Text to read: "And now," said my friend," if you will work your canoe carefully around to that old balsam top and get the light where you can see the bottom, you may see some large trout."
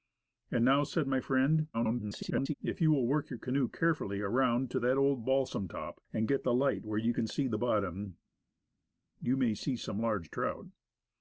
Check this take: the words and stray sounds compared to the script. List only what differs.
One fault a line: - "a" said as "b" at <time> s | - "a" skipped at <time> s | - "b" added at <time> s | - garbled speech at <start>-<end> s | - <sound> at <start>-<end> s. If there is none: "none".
- garbled speech at 1.7-2.5 s